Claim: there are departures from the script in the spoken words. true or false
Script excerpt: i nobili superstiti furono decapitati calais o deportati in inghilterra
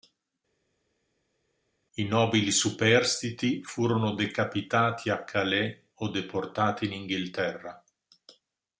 true